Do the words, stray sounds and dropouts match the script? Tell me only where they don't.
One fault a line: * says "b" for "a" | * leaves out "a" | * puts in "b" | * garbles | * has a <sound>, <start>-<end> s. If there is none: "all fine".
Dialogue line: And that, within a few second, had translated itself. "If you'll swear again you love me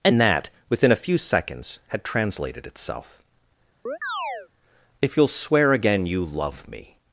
* says "seconds" for "second"
* has a chirp, 3.9-4.5 s